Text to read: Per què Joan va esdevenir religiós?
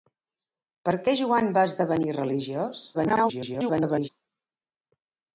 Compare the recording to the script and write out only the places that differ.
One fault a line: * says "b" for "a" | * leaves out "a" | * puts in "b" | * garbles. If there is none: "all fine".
* garbles